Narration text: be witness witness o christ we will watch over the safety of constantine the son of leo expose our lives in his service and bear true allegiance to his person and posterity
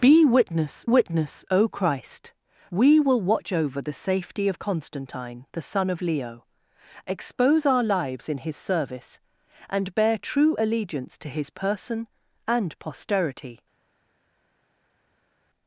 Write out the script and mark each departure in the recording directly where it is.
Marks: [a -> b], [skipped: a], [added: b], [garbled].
be witness witness o christ we will watch over the safety of constantine the son of leo expose our lives in his service and bear true allegiance to his person and posterity